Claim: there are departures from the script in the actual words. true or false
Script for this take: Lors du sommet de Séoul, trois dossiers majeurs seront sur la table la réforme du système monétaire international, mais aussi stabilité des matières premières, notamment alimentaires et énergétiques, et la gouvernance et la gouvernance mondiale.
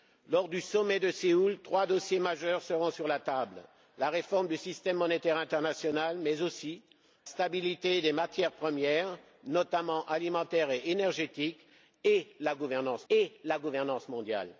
false